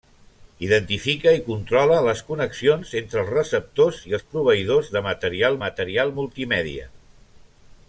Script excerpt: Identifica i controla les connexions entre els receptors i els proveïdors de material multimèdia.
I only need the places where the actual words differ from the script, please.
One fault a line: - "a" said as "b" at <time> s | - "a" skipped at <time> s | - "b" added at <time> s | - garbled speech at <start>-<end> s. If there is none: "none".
- "material" added at 5.6 s